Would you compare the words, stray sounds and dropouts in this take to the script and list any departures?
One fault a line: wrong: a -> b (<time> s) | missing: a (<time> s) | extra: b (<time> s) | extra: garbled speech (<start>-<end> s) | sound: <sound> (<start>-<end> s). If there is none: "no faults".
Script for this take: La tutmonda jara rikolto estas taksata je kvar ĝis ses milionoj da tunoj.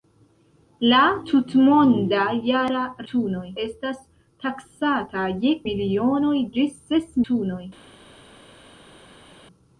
wrong: rikolto -> tunoj (3.1 s)
wrong: kvar -> milionoj (5.7 s)
missing: milionoj da (7.2 s)